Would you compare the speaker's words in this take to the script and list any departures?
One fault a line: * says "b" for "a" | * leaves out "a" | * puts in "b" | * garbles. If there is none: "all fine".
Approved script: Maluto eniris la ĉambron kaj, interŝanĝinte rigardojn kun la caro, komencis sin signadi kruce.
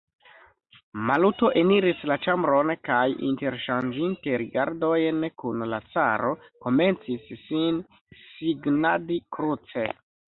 all fine